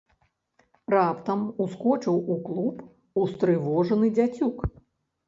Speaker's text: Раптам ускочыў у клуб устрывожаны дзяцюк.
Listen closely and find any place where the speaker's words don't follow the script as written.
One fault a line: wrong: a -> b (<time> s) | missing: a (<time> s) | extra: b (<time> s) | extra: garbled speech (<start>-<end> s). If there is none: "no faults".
no faults